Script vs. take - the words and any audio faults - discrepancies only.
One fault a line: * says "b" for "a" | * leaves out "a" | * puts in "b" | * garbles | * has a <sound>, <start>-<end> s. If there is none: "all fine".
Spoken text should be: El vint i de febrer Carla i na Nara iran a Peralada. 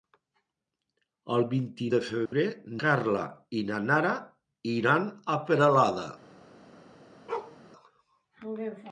* has a dropout, 2.3-2.3 s
* has a bark, 7.3-7.6 s